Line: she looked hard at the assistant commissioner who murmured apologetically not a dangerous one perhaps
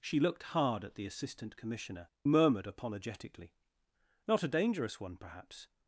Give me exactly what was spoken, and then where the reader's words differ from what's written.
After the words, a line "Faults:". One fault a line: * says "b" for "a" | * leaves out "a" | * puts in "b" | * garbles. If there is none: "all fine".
she looked hard at the assistant commissioner murmured apologetically not a dangerous one perhaps
Faults:
* leaves out "who"